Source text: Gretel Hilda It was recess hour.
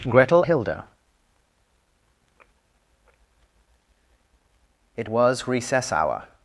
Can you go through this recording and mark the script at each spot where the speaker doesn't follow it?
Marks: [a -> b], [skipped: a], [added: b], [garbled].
Gretel Hilda It was recess hour.